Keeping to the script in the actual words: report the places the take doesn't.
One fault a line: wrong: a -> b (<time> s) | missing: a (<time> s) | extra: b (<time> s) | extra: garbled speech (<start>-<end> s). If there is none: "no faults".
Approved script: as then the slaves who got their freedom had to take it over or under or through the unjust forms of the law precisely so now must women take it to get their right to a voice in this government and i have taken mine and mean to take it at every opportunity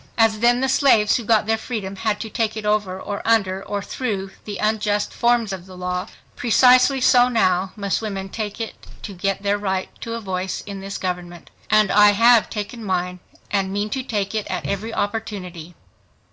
no faults